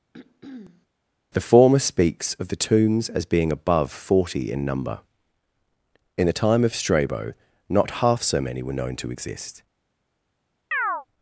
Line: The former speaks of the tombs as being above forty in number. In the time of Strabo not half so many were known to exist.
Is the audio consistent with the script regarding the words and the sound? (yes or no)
no